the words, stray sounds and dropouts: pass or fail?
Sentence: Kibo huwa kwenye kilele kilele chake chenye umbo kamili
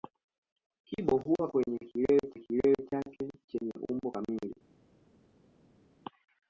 pass